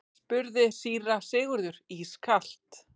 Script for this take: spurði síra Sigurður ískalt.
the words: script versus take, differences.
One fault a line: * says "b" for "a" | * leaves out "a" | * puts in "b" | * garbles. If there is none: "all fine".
all fine